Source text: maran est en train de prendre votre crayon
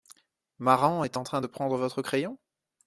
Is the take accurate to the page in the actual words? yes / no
yes